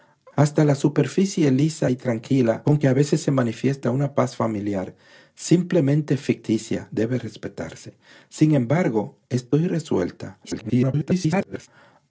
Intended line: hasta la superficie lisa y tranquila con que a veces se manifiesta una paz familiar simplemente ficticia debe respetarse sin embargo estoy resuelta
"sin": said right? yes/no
yes